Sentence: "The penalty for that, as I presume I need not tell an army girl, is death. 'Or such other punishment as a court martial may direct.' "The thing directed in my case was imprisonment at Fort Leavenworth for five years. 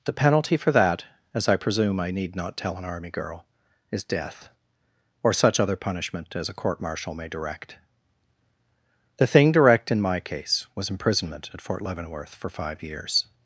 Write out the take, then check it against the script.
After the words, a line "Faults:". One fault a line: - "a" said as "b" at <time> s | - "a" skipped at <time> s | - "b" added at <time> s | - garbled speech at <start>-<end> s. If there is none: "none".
"The penalty for that, as I presume I need not tell an army girl, is death. 'Or such other punishment as a court martial may direct.' "The thing direct in my case was imprisonment at Fort Leavenworth for five years.
Faults:
- "directed" said as "direct" at 9.5 s